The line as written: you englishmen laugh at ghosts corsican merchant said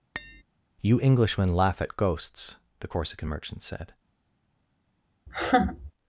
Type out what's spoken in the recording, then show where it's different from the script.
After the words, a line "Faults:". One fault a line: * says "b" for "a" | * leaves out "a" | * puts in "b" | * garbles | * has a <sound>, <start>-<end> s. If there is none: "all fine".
you englishmen laugh at ghosts the corsican merchant said
Faults:
* has a tap, 0.1-0.4 s
* puts in "the"
* has a laugh, 5.3-5.9 s